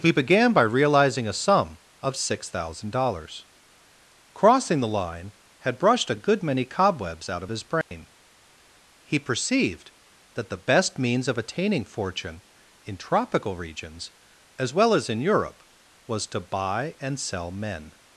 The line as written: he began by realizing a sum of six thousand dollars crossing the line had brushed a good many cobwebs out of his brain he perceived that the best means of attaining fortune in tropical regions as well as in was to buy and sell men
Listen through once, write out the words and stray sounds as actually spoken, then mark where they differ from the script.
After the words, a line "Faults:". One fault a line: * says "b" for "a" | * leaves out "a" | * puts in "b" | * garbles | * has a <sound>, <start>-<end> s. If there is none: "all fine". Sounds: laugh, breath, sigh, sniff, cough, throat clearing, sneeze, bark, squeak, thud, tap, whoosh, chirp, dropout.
he began by realizing a sum of six thousand dollars crossing the line had brushed a good many cobwebs out of his brain he perceived that the best means of attaining fortune in tropical regions as well as in europe was to buy and sell men
Faults:
* has a dropout, 7.8-7.9 s
* puts in "europe"